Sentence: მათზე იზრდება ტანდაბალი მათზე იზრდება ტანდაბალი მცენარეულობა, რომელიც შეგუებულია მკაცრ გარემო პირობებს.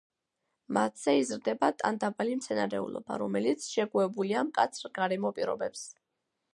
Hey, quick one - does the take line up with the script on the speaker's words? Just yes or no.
no